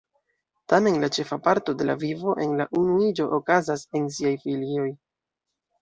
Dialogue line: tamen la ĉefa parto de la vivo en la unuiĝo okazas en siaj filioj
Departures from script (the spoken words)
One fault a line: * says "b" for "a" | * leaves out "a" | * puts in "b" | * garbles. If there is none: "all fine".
all fine